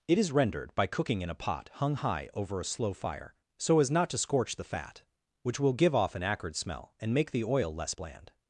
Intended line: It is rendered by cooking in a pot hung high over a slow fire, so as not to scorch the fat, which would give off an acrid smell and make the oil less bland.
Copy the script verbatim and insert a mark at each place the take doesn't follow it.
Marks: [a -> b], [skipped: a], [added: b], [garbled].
It is rendered by cooking in a pot hung high over a slow fire, so as not to scorch the fat, which [would -> will] give off an acrid smell and make the oil less bland.